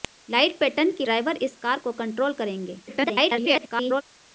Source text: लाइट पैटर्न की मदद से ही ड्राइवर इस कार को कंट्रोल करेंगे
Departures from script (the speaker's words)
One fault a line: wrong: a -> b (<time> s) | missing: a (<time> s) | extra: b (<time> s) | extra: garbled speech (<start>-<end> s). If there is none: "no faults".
missing: मदद से ही (1.1 s)
extra: garbled speech (2.9-4.0 s)